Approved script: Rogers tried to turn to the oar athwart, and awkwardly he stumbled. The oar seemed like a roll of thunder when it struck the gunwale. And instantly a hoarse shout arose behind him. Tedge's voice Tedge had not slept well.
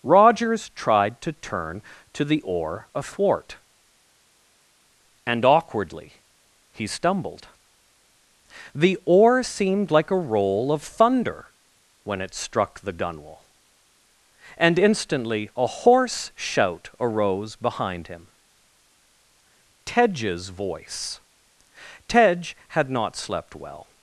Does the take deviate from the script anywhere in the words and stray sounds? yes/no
no